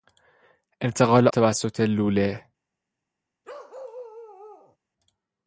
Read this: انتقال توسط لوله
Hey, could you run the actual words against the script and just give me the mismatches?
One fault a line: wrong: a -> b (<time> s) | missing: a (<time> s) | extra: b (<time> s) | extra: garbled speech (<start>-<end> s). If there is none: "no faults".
no faults